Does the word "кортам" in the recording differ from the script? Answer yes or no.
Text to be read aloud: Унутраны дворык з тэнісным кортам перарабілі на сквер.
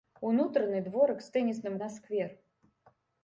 yes